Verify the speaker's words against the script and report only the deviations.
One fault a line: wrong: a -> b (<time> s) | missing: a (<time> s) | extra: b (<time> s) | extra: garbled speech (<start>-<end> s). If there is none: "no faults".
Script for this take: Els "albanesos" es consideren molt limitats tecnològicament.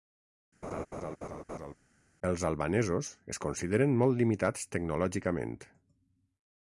no faults